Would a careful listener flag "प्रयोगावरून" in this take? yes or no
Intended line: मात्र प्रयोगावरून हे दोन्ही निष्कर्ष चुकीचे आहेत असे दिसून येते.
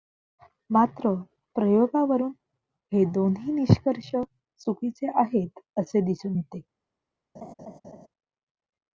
no